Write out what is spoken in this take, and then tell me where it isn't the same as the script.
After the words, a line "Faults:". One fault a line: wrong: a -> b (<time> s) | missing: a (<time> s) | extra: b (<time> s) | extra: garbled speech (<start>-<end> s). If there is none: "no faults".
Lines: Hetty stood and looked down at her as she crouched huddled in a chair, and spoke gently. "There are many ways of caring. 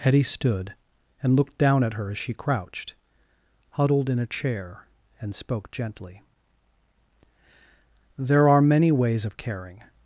Hetty stood and looked down at her as she crouched huddled in a chair, and spoke gently. "There are many ways of caring.
Faults:
no faults